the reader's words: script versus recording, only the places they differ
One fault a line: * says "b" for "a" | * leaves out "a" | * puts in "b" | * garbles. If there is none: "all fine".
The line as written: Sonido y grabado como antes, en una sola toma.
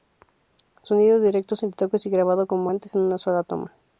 * puts in "directo sin retoques"